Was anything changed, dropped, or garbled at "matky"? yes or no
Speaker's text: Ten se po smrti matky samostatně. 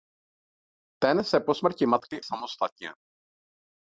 no